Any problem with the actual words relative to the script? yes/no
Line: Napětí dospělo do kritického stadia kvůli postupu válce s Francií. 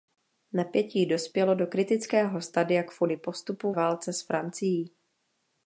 no